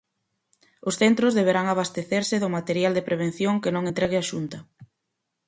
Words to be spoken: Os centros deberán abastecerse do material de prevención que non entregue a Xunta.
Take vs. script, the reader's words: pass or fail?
pass